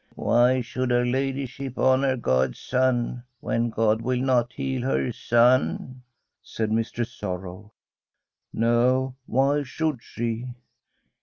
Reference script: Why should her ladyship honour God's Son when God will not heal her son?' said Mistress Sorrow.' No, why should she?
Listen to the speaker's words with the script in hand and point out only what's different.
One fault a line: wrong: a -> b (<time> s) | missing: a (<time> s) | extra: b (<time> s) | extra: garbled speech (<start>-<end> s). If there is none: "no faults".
no faults